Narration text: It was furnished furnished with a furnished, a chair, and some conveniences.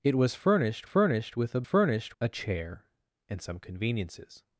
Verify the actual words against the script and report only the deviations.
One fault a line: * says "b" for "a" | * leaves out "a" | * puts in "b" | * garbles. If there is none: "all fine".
all fine